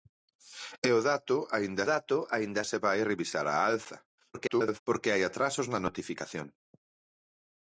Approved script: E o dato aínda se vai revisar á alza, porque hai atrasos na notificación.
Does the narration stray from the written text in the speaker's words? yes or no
yes